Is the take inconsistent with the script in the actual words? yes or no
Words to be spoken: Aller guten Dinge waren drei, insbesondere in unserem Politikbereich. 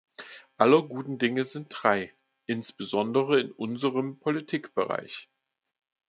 yes